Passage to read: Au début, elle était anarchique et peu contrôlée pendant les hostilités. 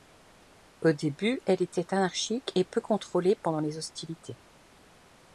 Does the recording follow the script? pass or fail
pass